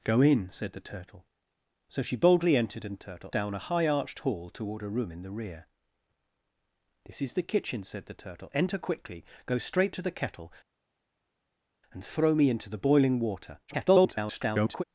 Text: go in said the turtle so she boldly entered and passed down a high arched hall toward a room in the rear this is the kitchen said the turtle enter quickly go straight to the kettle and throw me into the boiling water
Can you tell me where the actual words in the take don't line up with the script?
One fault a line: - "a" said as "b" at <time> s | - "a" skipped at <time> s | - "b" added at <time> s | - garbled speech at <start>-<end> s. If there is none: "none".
- "passed" said as "turtle" at 3.0 s
- garbled speech at 13.7-14.8 s